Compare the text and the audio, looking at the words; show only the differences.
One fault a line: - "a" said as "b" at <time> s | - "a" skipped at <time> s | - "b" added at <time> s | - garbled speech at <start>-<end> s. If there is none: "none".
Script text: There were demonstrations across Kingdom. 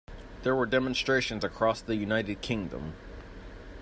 - "the United" added at 1.8 s